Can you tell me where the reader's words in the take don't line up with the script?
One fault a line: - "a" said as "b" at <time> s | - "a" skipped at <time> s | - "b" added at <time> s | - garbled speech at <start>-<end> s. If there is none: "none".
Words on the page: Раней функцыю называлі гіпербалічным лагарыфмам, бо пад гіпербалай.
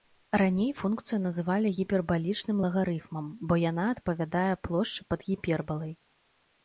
- "яна адпавядае плошчы" added at 3.7 s